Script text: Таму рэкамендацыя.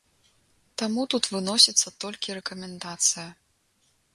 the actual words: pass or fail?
fail